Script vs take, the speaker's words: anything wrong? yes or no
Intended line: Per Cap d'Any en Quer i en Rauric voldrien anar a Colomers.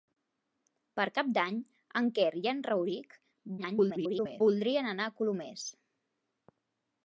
yes